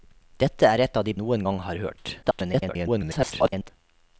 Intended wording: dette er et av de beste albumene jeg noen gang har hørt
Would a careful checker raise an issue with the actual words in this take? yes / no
yes